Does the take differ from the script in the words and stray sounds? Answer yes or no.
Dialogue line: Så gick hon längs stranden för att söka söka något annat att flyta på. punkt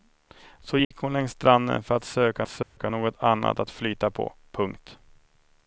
yes